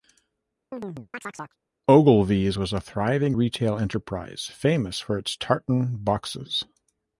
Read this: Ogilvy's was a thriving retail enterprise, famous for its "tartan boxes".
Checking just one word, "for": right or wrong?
right